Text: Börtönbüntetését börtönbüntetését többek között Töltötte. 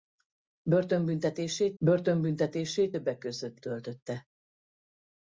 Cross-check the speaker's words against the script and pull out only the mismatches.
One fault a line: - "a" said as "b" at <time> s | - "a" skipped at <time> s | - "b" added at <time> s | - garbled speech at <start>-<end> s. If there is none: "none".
none